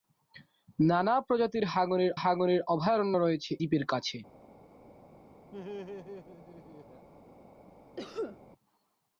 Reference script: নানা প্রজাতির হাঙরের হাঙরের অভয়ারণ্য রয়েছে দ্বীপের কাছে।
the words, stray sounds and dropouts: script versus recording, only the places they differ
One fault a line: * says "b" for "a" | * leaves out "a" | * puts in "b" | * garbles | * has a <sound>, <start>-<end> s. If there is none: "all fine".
* has a laugh, 5.5-7.1 s
* has a cough, 8.0-8.4 s